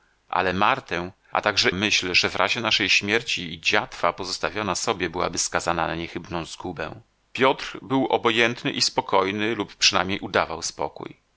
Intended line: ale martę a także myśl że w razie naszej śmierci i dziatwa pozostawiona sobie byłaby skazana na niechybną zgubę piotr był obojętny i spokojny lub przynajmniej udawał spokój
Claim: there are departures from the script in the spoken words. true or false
false